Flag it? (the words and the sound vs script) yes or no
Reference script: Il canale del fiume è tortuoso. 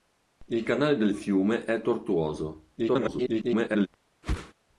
yes